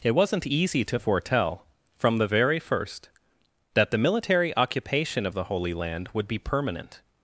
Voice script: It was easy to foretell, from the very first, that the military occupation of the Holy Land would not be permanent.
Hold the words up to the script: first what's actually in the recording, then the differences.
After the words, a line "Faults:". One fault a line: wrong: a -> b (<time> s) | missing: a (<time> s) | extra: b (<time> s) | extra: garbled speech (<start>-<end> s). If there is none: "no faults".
It wasn't easy to foretell, from the very first, that the military occupation of the Holy Land would be permanent.
Faults:
wrong: was -> wasn't (0.1 s)
missing: not (6.3 s)